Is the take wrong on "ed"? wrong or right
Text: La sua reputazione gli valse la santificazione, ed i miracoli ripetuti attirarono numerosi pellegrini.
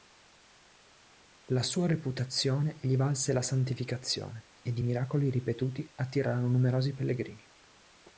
right